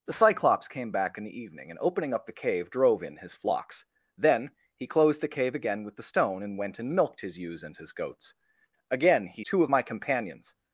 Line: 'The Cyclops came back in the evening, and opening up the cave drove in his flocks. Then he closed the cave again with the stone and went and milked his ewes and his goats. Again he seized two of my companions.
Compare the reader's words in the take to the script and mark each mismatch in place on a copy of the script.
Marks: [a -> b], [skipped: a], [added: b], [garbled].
'The Cyclops came back in the evening, and opening up the cave drove in his flocks. Then he closed the cave again with the stone and went and milked his ewes and his goats. Again he [skipped: seized] two of my companions.